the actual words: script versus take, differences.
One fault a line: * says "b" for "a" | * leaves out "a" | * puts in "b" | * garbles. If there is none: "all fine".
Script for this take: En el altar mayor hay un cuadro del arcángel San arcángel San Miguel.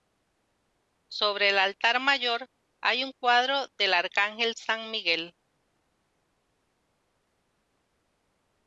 * says "Sobre" for "En"
* leaves out "arcángel San"